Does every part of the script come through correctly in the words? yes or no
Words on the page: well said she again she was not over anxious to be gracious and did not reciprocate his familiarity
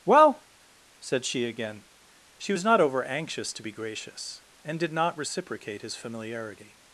yes